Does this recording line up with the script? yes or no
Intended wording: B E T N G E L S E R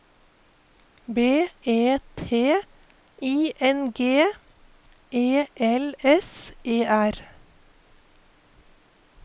no